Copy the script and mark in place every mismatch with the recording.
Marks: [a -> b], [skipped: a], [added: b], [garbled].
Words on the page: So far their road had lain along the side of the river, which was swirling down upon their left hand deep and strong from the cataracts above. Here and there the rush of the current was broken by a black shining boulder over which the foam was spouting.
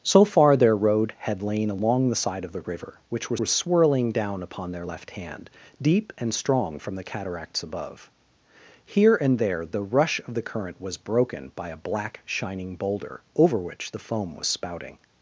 So far their road had lain along the side of the river, which was [added: was] swirling down upon their left hand deep and strong from the cataracts above. Here and there the rush of the current was broken by a black shining boulder over which the foam was spouting.